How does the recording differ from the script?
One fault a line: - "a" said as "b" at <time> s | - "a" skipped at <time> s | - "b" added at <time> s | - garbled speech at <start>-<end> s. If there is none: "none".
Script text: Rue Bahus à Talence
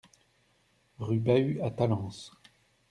none